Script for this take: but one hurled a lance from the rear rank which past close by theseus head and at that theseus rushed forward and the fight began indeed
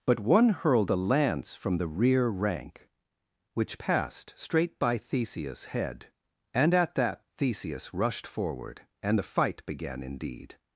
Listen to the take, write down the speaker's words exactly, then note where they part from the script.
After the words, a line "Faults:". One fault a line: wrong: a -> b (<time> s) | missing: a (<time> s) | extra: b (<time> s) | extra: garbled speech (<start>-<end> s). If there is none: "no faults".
but one hurled a lance from the rear rank which passed straight by theseus head and at that theseus rushed forward and the fight began indeed
Faults:
wrong: past close -> passed straight (3.8 s)